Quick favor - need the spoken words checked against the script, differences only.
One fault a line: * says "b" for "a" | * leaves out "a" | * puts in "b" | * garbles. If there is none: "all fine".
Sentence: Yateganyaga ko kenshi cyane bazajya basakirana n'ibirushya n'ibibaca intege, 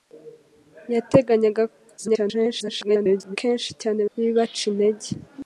* garbles
* leaves out "bazajya basakirana n'ibirushya"